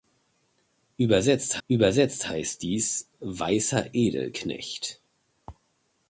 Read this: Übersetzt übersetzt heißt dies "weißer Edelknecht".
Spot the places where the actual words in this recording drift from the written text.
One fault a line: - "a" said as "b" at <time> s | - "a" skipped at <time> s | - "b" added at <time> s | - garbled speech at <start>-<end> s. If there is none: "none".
none